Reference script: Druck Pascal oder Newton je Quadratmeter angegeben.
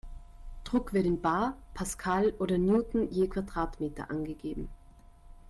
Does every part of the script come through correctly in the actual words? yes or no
no